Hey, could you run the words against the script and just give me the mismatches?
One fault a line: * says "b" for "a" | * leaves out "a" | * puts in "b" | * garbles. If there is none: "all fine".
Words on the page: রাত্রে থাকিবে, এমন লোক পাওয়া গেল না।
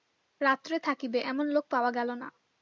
all fine